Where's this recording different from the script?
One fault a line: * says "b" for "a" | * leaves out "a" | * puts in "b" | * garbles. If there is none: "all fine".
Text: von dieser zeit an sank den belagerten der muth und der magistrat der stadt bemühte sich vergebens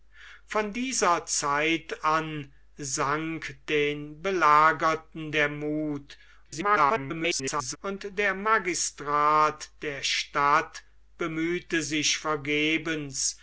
* garbles